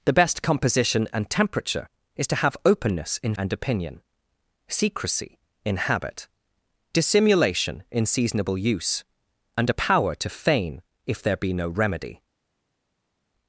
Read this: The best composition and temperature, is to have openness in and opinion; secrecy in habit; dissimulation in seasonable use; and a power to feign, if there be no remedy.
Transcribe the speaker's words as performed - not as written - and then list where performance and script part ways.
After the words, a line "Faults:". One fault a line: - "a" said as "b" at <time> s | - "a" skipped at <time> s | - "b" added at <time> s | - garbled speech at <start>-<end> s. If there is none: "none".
The best composition and temperature, is to have openness in and opinion; secrecy in habit; dissimulation in seasonable use; and a power to feign, if there be no remedy.
Faults:
none